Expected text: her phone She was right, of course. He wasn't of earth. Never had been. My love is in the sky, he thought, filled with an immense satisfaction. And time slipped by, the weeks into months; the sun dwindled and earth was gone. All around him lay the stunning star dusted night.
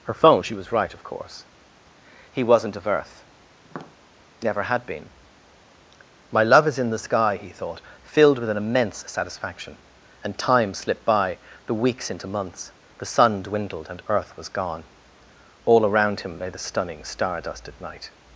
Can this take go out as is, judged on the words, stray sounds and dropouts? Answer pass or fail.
fail